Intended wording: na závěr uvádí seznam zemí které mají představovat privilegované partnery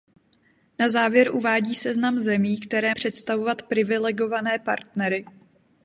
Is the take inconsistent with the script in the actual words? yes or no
yes